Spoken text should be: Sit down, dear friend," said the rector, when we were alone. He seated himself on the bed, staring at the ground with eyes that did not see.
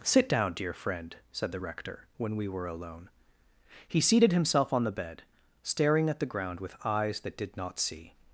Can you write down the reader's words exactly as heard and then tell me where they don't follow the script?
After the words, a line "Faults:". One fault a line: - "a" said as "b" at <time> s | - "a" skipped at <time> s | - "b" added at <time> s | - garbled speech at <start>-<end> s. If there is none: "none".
Sit down, dear friend," said the rector, when we were alone. He seated himself on the bed, staring at the ground with eyes that did not see.
Faults:
none